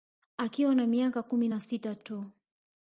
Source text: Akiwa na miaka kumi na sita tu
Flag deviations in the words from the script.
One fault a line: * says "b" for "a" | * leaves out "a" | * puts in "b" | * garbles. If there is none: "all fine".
all fine